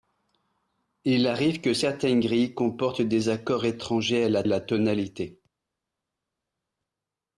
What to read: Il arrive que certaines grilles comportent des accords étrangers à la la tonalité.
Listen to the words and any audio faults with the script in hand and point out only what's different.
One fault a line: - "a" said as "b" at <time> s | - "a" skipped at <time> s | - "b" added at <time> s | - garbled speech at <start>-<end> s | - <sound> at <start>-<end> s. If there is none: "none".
none